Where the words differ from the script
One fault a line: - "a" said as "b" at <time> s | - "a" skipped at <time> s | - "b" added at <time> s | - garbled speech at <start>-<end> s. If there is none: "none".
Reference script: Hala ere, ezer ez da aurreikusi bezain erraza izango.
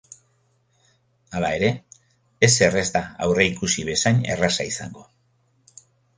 none